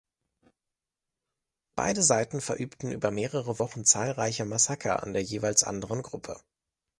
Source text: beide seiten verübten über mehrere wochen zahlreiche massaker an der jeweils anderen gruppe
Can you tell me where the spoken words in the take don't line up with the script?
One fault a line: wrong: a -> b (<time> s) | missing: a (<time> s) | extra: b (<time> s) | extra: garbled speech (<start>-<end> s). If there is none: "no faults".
no faults